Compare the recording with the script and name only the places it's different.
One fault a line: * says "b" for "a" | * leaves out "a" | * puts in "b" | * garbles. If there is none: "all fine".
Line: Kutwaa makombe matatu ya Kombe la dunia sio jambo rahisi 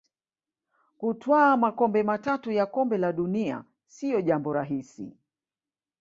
all fine